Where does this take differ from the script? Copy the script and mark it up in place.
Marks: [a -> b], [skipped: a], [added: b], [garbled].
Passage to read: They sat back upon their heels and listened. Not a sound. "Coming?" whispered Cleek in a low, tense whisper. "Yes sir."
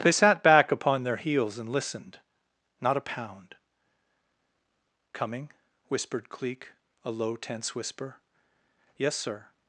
They sat back upon their heels and listened. Not a [sound. -> pound] "Coming?" whispered Cleek [skipped: in] a low, tense whisper. "Yes sir."